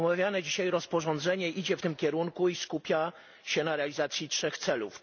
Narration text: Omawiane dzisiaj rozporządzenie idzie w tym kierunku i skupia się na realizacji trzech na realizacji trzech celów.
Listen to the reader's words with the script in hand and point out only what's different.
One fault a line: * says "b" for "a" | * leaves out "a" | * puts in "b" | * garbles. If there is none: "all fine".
* leaves out "na realizacji trzech"